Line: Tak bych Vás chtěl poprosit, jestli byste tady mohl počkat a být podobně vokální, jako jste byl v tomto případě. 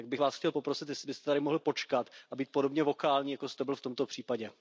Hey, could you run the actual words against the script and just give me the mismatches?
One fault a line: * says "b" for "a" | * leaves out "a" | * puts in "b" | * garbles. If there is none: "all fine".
all fine